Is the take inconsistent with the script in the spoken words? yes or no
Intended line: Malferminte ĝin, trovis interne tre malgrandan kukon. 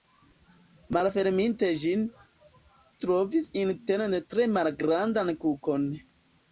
no